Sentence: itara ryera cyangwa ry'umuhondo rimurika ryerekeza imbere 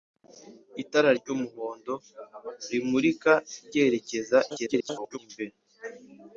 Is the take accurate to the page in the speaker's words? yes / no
no